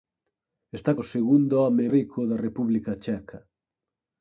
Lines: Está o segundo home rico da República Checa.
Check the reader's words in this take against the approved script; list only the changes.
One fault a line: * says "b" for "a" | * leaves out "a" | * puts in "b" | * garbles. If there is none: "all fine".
all fine